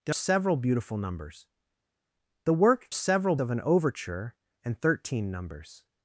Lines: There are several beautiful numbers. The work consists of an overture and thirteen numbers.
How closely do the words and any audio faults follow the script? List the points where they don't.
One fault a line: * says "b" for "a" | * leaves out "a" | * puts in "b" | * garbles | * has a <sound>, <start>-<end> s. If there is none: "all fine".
* leaves out "are"
* says "several" for "consists"